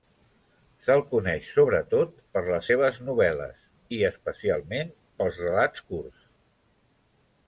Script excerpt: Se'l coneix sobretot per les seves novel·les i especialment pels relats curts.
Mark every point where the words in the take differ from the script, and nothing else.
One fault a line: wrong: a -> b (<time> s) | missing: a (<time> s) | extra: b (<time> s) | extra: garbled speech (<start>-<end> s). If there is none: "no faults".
no faults